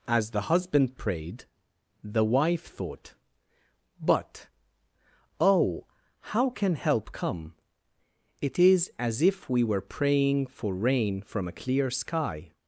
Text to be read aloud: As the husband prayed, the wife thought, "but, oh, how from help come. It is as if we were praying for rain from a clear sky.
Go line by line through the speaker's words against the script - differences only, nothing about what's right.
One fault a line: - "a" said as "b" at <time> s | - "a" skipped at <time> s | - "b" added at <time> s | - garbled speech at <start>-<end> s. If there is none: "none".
- "from" said as "can" at 6.5 s